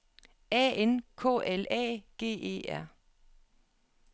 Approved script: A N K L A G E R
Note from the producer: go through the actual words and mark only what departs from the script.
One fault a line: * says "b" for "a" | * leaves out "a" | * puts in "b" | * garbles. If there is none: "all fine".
all fine